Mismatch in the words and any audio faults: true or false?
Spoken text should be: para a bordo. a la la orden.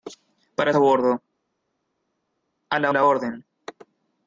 false